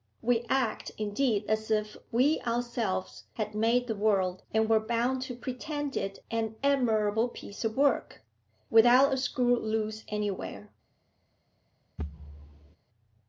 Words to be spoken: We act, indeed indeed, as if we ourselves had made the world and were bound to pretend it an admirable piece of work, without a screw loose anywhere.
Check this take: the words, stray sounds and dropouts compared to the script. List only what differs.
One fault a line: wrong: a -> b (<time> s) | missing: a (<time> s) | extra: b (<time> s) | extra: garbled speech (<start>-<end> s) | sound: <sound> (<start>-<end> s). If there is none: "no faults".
missing: indeed (1.4 s)
sound: thud (12.0-12.8 s)